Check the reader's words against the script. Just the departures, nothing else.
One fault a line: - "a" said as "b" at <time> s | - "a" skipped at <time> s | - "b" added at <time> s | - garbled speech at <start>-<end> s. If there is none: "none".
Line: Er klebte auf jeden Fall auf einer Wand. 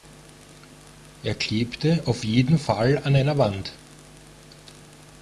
- "auf" said as "an" at 3.0 s